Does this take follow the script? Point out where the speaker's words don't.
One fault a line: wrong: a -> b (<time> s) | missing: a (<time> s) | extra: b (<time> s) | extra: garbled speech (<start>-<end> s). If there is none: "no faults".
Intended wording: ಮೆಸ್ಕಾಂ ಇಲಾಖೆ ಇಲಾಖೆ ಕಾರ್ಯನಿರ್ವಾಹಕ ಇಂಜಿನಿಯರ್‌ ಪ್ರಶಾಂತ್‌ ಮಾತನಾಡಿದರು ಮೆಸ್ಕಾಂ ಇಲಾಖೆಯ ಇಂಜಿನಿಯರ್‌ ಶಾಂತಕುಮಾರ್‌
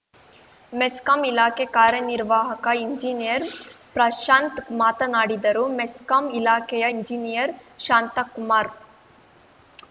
missing: ಇಲಾಖೆ (1.6 s)